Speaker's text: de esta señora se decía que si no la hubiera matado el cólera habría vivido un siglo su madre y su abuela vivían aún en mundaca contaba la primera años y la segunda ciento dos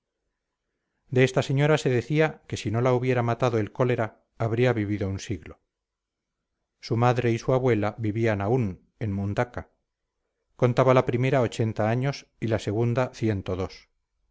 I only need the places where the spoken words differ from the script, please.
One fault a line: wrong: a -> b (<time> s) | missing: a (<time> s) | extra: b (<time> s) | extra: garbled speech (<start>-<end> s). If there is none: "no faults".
extra: ochenta (11.4 s)